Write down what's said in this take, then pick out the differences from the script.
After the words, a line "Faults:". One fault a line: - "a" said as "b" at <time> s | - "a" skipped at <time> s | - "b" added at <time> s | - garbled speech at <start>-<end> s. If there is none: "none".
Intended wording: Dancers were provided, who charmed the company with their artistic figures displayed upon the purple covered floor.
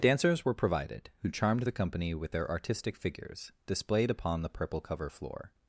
Dancers were provided, who charmed the company with their artistic figures displayed upon the purple cover floor.
Faults:
- "covered" said as "cover" at 4.8 s